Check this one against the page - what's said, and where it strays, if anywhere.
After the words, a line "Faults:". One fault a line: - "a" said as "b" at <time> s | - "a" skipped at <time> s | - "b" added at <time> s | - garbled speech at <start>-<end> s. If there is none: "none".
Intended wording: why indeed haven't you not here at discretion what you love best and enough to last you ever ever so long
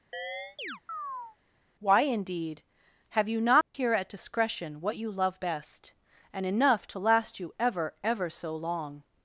why indeed have you not here at discretion what you love best and enough to last you ever ever so long
Faults:
- "haven't" said as "have" at 3.1 s